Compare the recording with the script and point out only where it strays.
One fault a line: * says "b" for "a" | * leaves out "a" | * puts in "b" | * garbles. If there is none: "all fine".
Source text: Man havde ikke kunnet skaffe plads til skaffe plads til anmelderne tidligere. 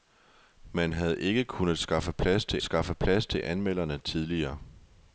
all fine